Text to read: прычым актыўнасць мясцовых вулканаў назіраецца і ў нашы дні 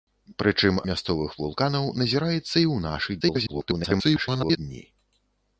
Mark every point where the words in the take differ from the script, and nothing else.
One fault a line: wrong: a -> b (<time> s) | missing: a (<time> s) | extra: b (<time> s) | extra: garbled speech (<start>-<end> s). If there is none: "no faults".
missing: актыўнасць (0.8 s)
extra: garbled speech (3.2-4.6 s)